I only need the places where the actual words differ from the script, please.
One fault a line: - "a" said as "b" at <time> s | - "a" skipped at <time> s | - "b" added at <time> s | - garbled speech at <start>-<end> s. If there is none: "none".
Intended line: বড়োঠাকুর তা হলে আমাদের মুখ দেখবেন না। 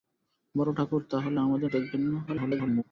- "মুখ" skipped at 1.7 s
- garbled speech at 2.3-2.8 s